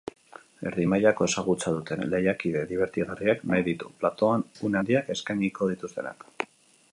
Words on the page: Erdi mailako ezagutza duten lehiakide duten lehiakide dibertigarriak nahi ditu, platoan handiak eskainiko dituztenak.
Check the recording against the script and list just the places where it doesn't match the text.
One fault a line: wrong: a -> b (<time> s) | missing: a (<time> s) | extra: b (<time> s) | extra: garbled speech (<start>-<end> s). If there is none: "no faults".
missing: duten lehiakide (2.6 s)
extra: une (4.7 s)